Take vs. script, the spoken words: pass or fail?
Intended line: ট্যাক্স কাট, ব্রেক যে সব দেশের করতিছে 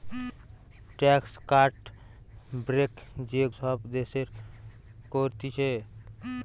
pass